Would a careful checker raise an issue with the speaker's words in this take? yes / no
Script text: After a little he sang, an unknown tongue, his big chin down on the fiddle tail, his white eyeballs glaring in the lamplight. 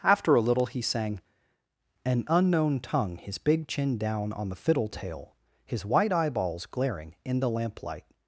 no